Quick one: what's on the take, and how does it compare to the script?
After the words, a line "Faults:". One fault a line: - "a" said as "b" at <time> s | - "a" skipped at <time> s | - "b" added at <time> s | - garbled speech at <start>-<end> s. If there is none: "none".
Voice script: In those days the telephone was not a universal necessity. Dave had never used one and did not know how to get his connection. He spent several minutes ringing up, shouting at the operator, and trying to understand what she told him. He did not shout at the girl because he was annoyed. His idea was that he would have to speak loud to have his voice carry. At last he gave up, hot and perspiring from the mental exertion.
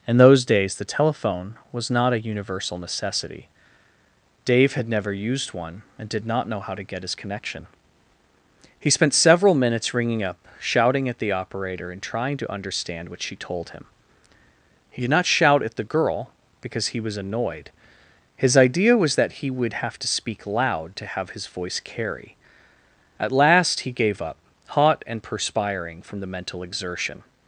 In those days the telephone was not a universal necessity. Dave had never used one and did not know how to get his connection. He spent several minutes ringing up, shouting at the operator, and trying to understand what she told him. He did not shout at the girl because he was annoyed. His idea was that he would have to speak loud to have his voice carry. At last he gave up, hot and perspiring from the mental exertion.
Faults:
none